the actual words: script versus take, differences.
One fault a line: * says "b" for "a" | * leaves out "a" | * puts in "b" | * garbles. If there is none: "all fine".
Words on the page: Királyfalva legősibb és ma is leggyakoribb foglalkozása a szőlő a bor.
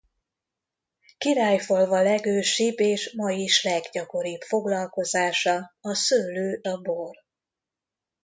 all fine